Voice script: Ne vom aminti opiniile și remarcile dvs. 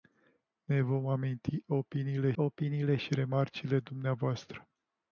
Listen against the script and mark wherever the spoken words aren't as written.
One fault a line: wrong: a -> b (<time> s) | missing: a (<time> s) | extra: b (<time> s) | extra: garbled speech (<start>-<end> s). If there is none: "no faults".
extra: opiniile (2.3 s)